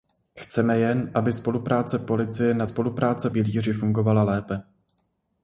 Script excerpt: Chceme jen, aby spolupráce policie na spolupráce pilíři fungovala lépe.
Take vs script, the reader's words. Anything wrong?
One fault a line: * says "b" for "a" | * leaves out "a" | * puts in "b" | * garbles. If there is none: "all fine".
all fine